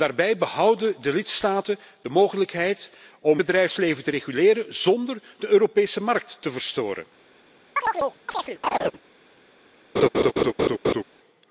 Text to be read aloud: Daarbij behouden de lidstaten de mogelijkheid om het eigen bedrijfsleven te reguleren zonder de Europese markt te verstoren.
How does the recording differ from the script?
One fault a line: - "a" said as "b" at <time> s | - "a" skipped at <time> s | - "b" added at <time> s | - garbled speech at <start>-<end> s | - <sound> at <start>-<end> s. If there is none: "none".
- "het eigen" skipped at 3.4 s
- chirp at 7.8-9.0 s
- laugh at 10.0-11.0 s